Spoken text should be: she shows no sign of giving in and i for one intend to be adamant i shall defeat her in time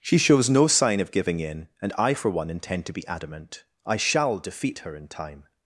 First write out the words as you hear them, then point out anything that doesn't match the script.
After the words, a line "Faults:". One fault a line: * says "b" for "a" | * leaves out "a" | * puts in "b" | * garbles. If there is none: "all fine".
she shows no sign of giving in and i for one intend to be adamant i shall defeat her in time
Faults:
all fine